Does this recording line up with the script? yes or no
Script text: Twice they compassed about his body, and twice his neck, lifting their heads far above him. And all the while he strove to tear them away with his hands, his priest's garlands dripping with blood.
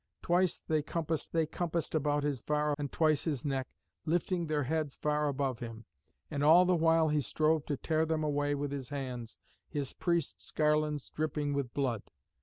no